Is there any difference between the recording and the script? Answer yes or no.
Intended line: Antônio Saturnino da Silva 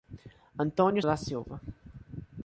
yes